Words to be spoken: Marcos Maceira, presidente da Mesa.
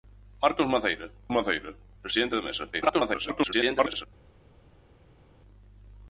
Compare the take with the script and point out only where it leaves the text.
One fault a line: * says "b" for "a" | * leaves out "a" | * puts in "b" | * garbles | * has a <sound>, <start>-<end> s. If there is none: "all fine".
* puts in "Maceira"
* garbles